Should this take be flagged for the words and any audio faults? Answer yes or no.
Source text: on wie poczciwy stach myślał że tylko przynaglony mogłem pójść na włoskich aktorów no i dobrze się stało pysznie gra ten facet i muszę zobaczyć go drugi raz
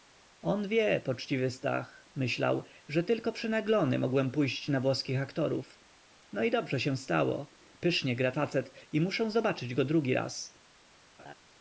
yes